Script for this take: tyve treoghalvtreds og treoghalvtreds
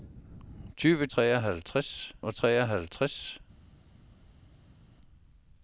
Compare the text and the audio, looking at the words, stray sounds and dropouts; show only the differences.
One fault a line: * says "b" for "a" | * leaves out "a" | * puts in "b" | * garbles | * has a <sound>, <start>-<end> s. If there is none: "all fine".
all fine